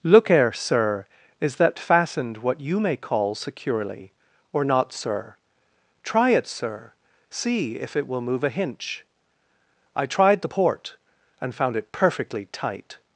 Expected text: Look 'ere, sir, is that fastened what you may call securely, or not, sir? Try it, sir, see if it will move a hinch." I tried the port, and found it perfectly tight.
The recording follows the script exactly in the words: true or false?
true